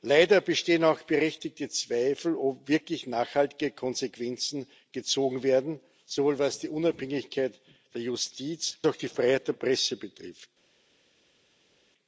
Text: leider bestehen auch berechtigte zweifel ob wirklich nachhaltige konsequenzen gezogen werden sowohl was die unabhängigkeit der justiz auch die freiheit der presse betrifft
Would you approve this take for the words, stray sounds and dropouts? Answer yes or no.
yes